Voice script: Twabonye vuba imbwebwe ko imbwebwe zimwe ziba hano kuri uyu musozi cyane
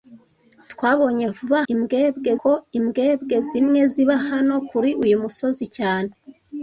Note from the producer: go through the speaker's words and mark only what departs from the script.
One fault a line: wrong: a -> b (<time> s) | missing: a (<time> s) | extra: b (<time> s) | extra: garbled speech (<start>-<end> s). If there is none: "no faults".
no faults